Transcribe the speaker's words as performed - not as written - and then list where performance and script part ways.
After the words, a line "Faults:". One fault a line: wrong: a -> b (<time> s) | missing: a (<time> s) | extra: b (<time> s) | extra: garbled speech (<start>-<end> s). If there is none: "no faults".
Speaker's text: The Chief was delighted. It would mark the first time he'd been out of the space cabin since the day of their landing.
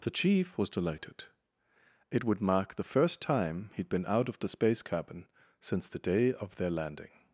The Chief was delighted. It would mark the first time he'd been out of the space cabin since the day of their landing.
Faults:
no faults